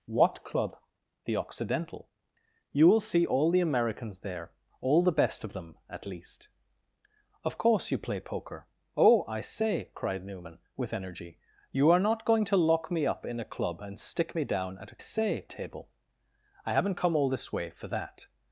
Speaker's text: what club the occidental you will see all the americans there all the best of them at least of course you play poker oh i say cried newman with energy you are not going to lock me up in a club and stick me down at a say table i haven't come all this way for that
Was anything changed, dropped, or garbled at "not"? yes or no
no